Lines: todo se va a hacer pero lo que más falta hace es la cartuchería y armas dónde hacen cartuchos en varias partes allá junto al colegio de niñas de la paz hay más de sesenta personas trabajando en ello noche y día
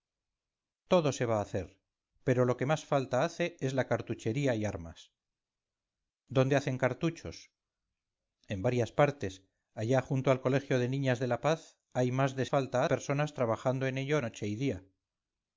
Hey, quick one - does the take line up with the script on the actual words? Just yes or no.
no